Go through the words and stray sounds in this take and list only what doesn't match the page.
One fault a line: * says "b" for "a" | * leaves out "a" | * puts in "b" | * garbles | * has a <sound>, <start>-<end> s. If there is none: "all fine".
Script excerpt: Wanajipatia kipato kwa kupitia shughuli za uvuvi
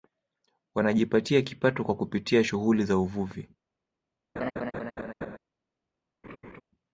* has a laugh, 4.4-5.4 s
* has a laugh, 6.2-6.6 s